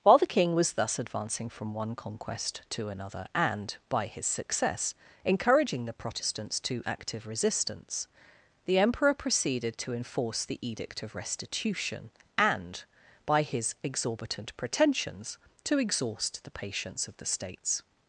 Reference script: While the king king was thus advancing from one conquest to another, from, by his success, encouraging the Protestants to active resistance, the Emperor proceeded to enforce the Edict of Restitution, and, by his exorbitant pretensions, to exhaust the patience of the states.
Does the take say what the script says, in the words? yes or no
no